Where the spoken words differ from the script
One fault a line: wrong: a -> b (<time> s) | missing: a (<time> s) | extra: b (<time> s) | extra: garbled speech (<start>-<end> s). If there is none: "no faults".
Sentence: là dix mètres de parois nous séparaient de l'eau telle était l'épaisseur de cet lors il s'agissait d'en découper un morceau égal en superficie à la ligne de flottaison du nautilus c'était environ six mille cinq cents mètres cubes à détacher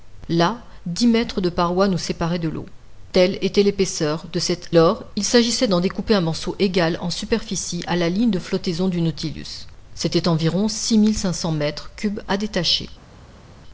no faults